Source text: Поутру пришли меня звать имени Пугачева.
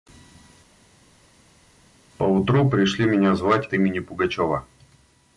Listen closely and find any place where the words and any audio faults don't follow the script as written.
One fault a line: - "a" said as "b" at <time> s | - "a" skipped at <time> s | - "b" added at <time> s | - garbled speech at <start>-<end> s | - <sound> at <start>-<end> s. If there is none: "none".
none